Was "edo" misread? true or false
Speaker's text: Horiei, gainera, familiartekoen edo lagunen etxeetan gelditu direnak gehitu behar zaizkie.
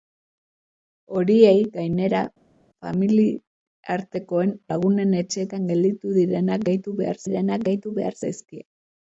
true